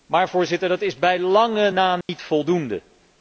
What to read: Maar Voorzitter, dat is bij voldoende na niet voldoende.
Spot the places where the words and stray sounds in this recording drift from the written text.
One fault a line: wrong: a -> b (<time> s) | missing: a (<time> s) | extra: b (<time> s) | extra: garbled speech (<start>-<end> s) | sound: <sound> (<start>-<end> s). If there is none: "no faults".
wrong: voldoende -> lange (1.2 s)
sound: dropout (2.0-2.1 s)